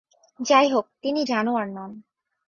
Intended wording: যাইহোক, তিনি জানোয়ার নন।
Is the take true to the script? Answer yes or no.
yes